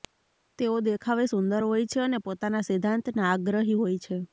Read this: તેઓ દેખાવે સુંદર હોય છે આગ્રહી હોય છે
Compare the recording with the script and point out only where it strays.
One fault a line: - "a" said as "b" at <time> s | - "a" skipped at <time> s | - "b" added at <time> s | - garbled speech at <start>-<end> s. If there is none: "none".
- "અને પોતાના સિદ્ધાંતના" added at 2.0 s